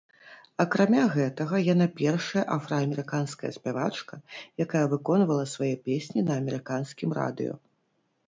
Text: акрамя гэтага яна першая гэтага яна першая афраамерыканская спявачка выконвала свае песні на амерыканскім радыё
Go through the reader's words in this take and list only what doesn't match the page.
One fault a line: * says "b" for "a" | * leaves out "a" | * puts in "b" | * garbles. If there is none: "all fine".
* leaves out "гэтага яна першая"
* puts in "якая"